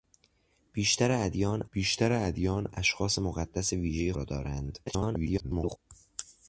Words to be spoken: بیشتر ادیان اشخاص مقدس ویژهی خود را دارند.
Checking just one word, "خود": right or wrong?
wrong